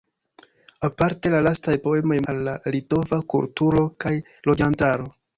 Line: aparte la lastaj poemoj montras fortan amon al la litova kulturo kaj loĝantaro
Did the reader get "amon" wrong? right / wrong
wrong